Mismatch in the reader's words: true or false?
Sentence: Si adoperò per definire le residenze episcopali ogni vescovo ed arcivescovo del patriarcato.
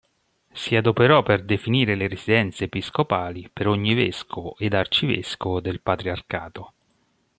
true